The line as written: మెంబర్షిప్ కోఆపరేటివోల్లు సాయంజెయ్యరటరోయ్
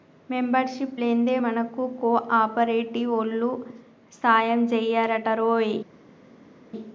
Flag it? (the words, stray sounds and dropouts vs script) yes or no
yes